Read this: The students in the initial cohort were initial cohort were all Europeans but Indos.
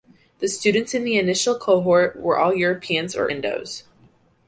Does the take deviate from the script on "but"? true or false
true